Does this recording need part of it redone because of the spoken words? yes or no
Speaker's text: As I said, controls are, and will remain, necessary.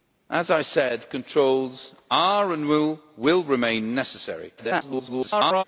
yes